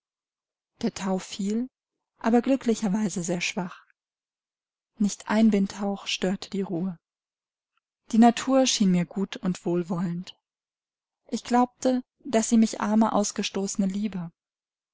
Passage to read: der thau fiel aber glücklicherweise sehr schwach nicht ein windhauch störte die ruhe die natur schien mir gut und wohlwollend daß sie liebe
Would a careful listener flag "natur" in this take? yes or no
no